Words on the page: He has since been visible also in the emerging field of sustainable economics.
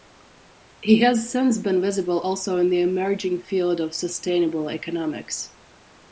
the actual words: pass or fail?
pass